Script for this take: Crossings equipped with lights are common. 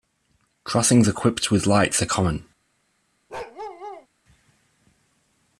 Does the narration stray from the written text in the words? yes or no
no